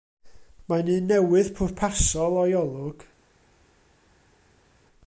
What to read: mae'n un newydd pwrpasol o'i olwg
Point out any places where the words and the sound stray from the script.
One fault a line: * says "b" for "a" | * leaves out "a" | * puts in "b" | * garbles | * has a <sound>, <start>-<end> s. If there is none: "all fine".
all fine